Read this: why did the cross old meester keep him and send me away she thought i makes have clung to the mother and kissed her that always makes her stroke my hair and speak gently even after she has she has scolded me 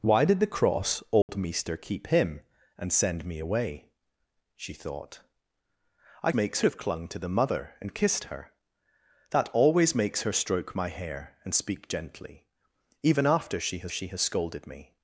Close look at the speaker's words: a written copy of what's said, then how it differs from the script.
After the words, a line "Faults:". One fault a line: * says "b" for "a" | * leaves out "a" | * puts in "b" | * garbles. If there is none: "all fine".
why did the cross old meester keep him and send me away she thought i makes have clung to the mother and kissed her that always makes her stroke my hair and speak gently even after she has she has scolded me
Faults:
all fine